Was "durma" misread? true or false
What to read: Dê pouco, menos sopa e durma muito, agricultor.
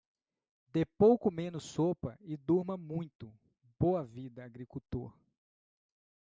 false